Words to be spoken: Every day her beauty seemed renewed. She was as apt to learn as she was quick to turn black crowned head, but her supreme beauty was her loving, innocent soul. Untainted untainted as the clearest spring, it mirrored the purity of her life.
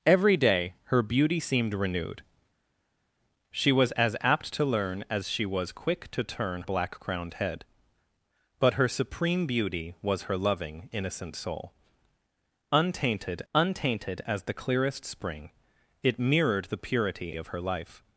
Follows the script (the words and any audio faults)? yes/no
yes